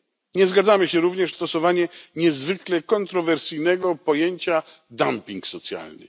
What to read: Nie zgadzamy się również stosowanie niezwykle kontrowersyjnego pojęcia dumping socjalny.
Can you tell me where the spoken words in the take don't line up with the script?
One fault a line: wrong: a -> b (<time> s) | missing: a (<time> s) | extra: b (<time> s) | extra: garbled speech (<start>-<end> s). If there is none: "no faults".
no faults